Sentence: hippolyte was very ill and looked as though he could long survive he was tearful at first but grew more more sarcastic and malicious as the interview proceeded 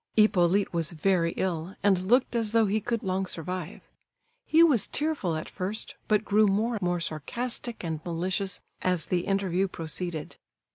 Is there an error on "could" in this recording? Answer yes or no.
no